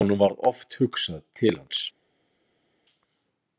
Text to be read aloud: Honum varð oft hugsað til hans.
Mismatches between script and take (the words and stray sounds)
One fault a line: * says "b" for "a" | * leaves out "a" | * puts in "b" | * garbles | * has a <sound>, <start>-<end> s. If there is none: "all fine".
all fine